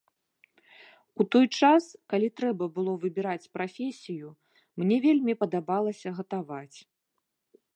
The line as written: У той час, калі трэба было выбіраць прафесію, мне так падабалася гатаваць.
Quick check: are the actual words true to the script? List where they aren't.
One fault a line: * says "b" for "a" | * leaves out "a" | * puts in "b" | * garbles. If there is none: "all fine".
* says "вельмі" for "так"